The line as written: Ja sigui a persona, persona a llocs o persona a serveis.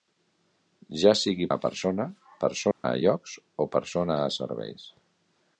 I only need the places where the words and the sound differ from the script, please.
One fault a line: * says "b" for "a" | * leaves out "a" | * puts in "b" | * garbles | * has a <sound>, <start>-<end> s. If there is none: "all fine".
* has a dropout, 2.7-2.8 s